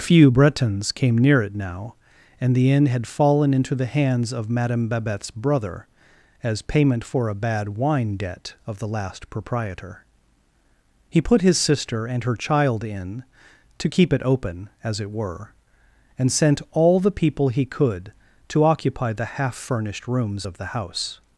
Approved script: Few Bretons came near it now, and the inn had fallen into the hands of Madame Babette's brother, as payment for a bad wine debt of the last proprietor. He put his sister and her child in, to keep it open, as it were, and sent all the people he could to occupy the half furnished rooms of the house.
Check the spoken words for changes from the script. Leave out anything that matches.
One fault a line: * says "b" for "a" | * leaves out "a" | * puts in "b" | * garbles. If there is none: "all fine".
all fine